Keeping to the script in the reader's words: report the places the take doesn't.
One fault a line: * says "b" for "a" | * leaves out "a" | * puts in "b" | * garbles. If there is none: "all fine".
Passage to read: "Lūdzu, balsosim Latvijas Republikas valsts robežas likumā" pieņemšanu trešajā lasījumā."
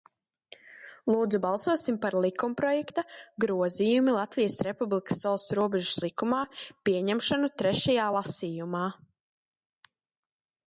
* puts in "par likumprojekta Grozījumi"